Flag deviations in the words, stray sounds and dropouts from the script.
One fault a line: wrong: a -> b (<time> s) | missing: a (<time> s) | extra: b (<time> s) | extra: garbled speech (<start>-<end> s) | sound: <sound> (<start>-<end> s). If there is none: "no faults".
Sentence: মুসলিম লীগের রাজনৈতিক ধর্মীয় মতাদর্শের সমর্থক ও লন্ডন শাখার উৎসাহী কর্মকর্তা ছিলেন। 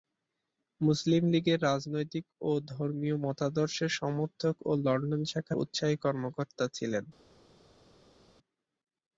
extra: ও (2.4 s)